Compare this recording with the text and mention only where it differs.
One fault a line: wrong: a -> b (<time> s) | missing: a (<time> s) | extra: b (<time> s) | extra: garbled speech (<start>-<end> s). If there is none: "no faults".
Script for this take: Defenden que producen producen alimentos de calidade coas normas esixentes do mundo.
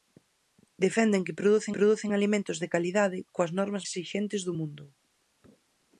no faults